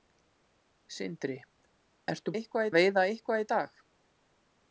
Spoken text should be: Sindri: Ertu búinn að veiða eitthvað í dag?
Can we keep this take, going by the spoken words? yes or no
no